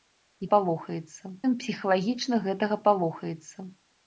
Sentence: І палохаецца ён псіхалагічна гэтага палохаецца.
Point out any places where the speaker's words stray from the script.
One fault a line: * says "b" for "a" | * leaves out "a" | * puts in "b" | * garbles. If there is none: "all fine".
all fine